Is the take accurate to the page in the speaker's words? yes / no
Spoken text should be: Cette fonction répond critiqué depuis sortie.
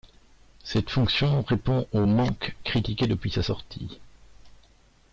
no